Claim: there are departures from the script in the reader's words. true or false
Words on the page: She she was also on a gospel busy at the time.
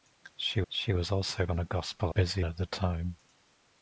false